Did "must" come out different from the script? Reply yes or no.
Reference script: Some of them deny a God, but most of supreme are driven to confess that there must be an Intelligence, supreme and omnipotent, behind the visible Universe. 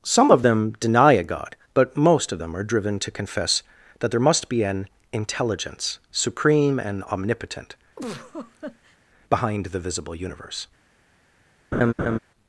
no